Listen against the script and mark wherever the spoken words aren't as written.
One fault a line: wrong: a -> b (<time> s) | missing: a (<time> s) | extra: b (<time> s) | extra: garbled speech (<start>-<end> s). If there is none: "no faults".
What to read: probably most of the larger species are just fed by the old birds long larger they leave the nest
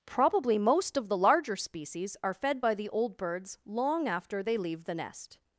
missing: just (2.3 s)
wrong: larger -> after (4.1 s)